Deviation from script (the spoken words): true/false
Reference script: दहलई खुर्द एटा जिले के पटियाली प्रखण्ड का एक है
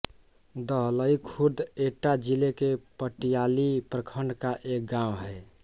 true